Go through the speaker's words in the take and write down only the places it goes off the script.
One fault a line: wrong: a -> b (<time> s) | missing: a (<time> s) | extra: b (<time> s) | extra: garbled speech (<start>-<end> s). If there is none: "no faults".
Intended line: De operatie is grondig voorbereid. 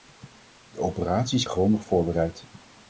no faults